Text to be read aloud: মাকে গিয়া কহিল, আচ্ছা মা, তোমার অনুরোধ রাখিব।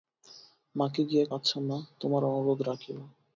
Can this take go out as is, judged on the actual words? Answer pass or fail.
fail